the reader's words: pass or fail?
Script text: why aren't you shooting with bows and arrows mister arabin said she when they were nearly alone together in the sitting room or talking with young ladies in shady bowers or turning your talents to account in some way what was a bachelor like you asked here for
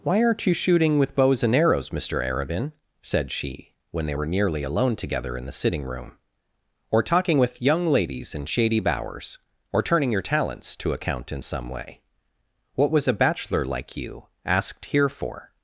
pass